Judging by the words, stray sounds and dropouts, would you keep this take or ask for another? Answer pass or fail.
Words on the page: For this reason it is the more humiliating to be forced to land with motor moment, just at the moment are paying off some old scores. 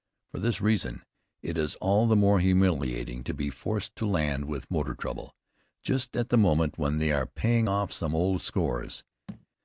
fail